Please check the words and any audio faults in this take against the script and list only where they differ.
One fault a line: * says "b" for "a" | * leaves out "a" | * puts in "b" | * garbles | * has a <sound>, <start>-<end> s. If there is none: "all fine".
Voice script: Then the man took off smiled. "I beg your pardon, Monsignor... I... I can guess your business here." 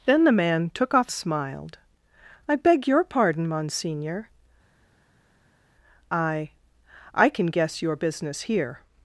all fine